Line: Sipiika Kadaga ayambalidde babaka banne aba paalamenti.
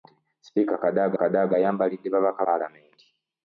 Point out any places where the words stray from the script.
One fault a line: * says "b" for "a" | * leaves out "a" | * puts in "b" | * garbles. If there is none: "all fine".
* puts in "Kadaga"
* leaves out "banne aba"